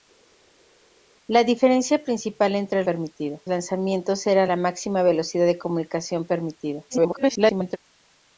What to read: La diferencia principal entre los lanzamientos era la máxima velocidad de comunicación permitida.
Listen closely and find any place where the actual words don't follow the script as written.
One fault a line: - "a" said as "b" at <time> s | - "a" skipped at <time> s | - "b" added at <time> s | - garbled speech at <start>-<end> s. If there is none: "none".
- "los" said as "permitida" at 2.8 s
- garbled speech at 6.9-7.8 s